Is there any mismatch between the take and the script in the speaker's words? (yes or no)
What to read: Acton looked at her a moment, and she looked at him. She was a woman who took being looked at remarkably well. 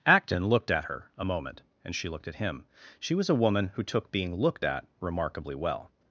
no